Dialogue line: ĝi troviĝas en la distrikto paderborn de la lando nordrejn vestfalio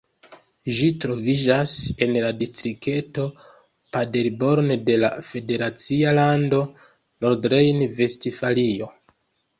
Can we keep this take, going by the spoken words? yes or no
no